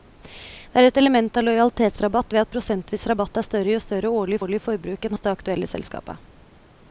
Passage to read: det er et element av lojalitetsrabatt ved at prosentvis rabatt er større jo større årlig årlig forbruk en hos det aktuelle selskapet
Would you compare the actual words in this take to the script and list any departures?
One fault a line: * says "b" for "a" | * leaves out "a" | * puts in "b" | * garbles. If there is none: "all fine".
all fine